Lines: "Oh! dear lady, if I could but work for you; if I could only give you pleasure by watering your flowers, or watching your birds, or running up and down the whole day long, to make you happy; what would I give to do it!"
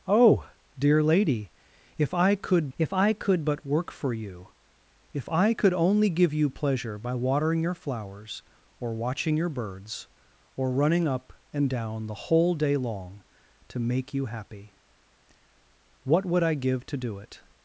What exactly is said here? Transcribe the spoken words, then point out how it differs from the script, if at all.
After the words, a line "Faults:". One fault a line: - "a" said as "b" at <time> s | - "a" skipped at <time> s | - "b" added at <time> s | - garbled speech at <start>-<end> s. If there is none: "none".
"Oh! dear lady, if I could if I could but work for you; if I could only give you pleasure by watering your flowers, or watching your birds, or running up and down the whole day long, to make you happy; what would I give to do it!"
Faults:
- "if I could" added at 2.8 s